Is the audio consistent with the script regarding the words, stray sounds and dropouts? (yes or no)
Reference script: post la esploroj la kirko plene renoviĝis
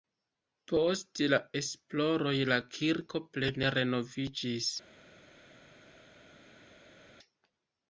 yes